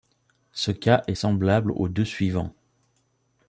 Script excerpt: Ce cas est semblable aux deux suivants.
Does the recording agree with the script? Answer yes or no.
yes